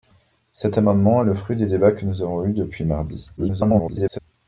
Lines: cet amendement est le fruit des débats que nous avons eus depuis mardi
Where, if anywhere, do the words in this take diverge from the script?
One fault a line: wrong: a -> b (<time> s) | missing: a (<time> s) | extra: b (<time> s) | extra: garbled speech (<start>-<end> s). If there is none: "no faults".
extra: garbled speech (3.4-4.2 s)